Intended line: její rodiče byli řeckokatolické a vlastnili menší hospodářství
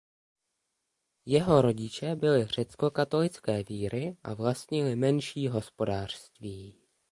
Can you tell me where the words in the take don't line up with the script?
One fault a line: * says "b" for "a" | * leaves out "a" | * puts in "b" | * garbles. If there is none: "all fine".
* says "jeho" for "její"
* puts in "víry"